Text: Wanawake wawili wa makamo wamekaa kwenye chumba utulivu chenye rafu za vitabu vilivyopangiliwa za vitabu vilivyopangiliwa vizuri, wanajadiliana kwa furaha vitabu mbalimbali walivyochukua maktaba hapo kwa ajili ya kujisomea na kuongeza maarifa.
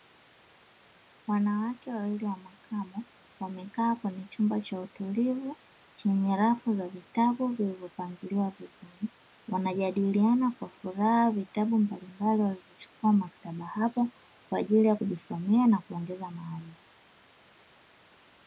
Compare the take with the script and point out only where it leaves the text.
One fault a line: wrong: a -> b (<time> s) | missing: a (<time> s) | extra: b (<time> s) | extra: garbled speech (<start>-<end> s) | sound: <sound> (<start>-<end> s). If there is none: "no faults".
extra: cha (4.6 s)
missing: za vitabu vilivyopangiliwa (8.5 s)